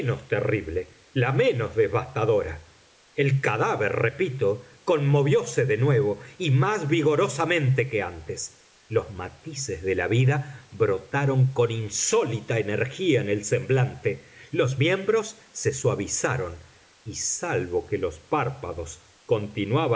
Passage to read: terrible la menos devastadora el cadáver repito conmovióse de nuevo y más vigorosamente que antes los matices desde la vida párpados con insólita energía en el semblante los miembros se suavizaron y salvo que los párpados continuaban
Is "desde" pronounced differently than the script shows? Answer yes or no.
yes